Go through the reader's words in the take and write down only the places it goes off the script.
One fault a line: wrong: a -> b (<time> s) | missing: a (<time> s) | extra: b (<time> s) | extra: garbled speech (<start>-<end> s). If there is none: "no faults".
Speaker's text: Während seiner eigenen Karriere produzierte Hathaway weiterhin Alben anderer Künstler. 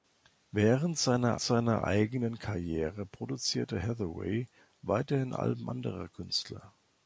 extra: seiner (1.4 s)